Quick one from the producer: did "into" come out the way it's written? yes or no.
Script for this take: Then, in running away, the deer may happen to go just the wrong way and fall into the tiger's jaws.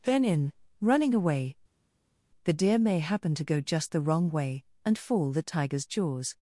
no